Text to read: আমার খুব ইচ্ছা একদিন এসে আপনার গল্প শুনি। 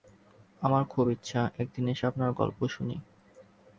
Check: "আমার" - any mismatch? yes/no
no